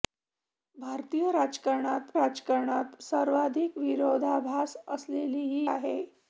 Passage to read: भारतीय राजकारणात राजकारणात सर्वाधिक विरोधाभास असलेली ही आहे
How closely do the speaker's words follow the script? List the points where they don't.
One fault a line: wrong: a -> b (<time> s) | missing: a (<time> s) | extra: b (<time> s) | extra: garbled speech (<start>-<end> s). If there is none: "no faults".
no faults